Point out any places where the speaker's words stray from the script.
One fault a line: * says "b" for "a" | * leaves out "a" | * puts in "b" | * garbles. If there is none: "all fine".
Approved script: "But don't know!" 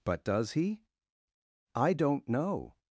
* puts in "does he I"